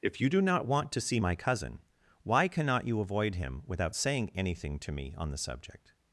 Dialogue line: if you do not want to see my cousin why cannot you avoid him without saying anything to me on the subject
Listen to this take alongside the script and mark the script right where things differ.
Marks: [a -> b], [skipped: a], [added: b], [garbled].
if you do not want to see my cousin why cannot you avoid him without saying anything to me on the subject